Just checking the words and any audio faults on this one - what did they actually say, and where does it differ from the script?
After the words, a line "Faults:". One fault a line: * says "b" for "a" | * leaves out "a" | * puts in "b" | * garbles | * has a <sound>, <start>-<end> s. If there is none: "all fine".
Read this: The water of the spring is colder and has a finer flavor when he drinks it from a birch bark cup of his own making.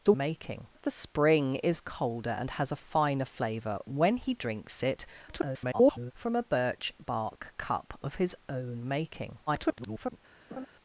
The making of the spring is colder and has a finer flavor when he drinks it [garbled] from a birch bark cup of his own making. [garbled]
Faults:
* says "making" for "water"
* garbles
* garbles
* has a laugh, 10.5-10.7 s